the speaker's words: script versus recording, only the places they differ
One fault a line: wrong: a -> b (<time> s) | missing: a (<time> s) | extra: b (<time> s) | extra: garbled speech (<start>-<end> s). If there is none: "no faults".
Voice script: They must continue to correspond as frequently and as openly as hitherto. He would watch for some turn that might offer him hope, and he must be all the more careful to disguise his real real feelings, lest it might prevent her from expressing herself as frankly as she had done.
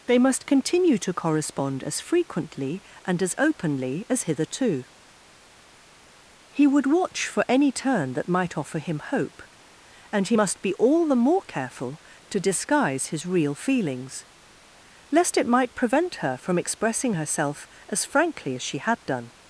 wrong: some -> any (7.5 s)
missing: real (13.5 s)